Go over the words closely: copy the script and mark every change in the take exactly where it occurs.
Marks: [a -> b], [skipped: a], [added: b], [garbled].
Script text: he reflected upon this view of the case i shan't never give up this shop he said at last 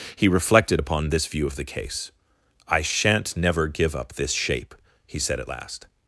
he reflected upon this view of the case i shan't never give up this [shop -> shape] he said at last